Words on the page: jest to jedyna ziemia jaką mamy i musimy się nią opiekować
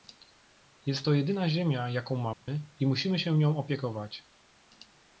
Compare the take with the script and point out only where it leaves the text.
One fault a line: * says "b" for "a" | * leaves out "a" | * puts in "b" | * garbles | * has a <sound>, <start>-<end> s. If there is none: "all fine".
* has a dropout, 2.3-2.5 s